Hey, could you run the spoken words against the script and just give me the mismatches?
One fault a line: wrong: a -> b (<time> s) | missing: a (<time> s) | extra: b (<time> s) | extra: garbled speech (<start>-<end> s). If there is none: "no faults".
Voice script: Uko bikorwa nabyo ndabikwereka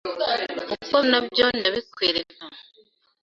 missing: bikorwa (0.9 s)